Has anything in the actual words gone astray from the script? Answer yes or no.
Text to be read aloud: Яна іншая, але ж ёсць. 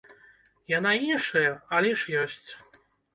no